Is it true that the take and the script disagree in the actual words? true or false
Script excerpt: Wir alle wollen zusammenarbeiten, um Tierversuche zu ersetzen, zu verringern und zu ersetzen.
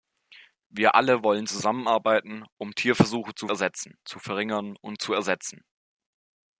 false